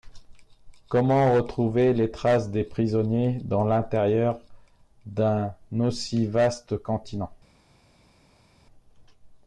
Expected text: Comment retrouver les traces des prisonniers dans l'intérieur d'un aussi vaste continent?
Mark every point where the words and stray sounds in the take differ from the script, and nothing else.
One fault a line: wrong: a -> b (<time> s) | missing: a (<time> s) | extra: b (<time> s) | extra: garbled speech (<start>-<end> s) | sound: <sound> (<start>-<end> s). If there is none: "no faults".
no faults